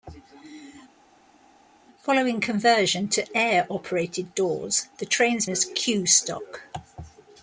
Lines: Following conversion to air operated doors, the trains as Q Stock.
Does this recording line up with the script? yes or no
yes